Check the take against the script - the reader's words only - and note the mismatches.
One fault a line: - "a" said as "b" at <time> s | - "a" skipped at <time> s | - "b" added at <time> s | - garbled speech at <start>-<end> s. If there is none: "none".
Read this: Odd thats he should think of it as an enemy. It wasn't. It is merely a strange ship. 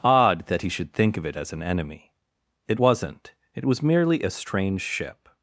- "thats" said as "that" at 0.5 s
- "is" said as "was" at 3.6 s